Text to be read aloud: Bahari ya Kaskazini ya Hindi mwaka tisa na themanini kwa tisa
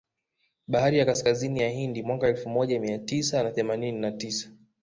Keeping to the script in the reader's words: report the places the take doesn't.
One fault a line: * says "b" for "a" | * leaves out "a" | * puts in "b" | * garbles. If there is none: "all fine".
* puts in "elfu moja mia"
* says "na" for "kwa"